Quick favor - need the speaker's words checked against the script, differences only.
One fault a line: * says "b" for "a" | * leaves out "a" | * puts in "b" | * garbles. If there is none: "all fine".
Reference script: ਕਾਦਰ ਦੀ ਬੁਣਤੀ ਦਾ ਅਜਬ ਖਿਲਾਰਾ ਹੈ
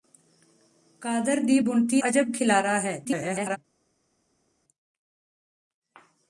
* leaves out "ਦਾ"
* garbles